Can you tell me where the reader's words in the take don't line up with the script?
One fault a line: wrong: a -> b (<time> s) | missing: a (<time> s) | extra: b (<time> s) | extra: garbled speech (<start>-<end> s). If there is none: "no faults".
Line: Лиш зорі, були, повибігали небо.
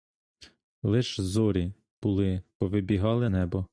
no faults